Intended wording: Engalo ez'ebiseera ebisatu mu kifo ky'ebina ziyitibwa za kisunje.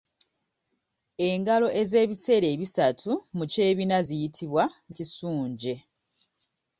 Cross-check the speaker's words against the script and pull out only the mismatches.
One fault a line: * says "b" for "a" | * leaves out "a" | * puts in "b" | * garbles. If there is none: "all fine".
* leaves out "kifo"
* leaves out "za"